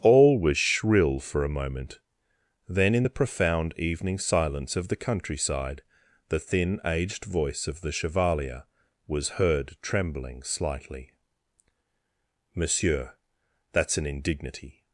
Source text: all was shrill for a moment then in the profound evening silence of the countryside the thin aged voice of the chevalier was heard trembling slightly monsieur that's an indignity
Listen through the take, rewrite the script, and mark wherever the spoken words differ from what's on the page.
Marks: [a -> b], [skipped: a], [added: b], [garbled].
all was shrill for a moment then in the profound evening silence of the countryside the thin aged voice of the chevalier was heard trembling slightly monsieur that's an indignity